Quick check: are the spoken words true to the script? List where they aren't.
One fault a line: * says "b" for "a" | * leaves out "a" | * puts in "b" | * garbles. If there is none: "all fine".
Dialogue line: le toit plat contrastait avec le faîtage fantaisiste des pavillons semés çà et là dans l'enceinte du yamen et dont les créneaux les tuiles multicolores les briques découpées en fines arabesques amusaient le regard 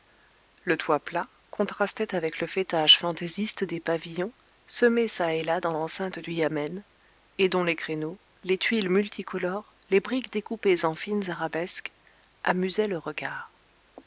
all fine